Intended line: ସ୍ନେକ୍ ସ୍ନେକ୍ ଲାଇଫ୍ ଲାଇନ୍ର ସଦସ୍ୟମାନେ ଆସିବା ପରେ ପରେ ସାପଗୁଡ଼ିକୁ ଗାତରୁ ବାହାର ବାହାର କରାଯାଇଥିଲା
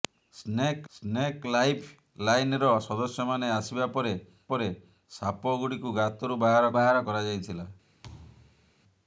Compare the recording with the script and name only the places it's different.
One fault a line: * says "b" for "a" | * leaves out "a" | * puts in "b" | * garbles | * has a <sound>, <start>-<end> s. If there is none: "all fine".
* has a thud, 8.0-8.7 s